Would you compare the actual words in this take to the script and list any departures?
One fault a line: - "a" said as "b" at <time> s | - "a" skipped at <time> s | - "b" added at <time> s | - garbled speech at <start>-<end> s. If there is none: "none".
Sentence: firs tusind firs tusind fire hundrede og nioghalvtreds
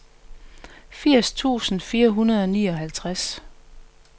- "firs tusind" skipped at 1.8 s